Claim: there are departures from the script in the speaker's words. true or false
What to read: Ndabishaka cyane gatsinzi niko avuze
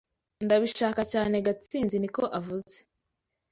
false